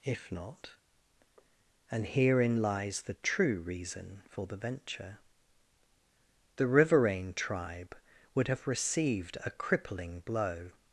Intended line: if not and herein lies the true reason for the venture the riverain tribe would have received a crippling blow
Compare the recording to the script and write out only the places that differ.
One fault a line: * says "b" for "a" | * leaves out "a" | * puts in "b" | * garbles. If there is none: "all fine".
all fine